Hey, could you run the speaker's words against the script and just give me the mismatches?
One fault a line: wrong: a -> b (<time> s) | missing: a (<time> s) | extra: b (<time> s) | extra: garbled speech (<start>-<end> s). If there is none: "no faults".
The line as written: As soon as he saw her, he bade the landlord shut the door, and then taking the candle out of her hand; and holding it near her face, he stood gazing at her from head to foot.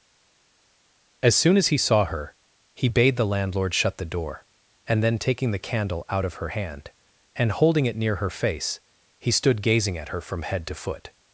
no faults